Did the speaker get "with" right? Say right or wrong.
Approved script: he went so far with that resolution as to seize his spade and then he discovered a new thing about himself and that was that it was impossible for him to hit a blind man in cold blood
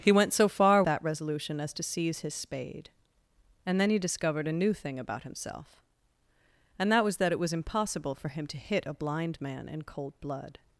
wrong